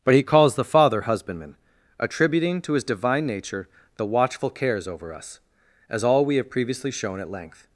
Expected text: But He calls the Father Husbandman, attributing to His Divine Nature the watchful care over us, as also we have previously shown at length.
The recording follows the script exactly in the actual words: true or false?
false